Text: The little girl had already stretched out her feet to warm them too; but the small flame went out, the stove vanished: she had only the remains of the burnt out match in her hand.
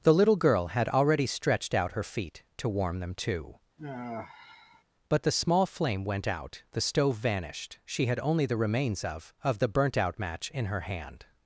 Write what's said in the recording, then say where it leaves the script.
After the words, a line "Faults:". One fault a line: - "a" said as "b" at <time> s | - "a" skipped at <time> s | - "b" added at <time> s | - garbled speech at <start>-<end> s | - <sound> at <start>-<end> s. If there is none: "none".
The little girl had already stretched out her feet to warm them too; but the small flame went out, the stove vanished: she had only the remains of of the burnt out match in her hand.
Faults:
- sigh at 3.8-4.8 s
- "of" added at 9.4 s